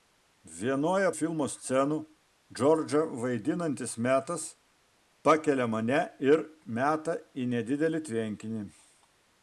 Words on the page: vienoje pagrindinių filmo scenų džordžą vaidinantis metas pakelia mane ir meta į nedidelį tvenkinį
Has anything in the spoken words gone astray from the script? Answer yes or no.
yes